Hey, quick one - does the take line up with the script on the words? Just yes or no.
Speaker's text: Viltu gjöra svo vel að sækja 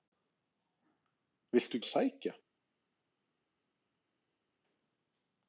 no